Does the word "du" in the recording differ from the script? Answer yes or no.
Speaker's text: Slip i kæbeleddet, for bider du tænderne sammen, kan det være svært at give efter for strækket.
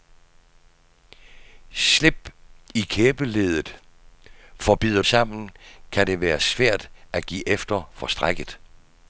yes